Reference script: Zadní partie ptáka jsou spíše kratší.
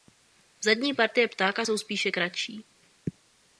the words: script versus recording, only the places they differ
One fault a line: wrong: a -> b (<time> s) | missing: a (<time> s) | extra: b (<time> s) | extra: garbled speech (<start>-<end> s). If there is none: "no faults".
no faults